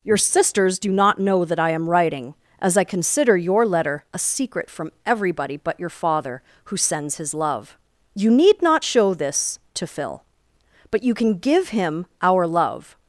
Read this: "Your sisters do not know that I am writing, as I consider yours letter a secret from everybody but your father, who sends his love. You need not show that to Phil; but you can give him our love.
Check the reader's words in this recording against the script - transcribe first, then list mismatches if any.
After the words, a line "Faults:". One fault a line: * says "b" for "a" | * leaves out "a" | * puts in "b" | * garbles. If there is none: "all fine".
"Your sisters do not know that I am writing, as I consider your letter a secret from everybody but your father, who sends his love. You need not show this to Phil; but you can give him our love.
Faults:
* says "your" for "yours"
* says "this" for "that"